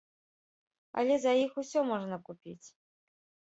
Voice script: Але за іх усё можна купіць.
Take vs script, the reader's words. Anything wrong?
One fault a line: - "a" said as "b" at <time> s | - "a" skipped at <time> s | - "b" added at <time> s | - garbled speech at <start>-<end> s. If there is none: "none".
none